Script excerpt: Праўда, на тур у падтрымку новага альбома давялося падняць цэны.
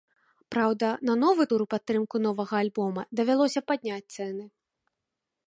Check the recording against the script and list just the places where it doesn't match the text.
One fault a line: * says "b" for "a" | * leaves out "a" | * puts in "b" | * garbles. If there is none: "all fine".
* puts in "новы"